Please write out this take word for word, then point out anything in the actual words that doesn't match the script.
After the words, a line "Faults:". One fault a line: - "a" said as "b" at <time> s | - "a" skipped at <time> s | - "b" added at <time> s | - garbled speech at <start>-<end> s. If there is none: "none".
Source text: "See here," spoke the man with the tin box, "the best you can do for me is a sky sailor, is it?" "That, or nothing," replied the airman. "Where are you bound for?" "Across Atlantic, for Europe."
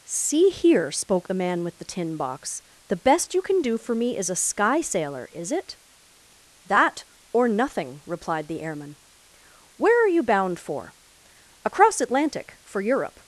"See here," spoke the man with the tin box, "the best you can do for me is a sky sailor, is it?" "That, or nothing," replied the airman. "Where are you bound for?" "Across Atlantic, for Europe."
Faults:
none